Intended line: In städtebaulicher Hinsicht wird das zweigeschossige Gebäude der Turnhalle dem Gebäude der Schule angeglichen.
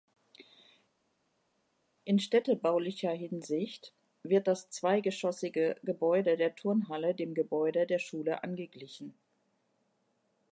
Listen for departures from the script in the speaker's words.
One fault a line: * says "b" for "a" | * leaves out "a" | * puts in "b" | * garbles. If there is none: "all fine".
all fine